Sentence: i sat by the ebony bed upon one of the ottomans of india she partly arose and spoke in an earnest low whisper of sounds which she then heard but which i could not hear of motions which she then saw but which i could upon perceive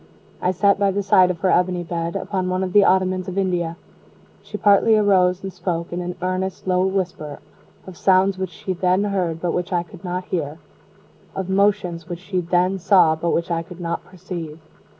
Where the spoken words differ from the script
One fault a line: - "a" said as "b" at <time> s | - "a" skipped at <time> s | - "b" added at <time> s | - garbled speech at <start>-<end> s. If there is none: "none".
- "side of her" added at 1.0 s
- "upon" said as "not" at 13.8 s